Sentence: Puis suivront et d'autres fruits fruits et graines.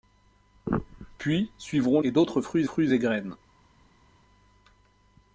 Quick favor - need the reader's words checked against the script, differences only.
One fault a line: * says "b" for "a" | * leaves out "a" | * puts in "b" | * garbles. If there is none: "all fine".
all fine